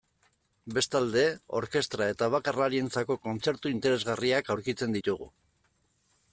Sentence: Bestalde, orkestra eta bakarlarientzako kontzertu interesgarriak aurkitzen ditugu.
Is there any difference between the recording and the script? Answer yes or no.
no